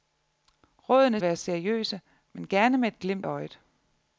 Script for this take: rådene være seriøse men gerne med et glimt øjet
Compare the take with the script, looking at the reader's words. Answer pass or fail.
pass